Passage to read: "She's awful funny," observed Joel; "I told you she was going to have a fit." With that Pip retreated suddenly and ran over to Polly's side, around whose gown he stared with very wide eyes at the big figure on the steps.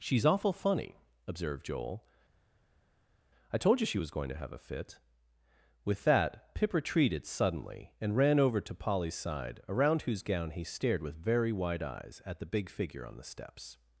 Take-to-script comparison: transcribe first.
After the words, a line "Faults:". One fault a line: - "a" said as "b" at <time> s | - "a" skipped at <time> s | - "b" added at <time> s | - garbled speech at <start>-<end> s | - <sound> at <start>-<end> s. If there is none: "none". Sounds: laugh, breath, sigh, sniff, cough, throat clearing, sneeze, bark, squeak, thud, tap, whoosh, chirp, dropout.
"She's awful funny," observed Joel; "I told you she was going to have a fit." With that Pip retreated suddenly and ran over to Polly's side, around whose gown he stared with very wide eyes at the big figure on the steps.
Faults:
none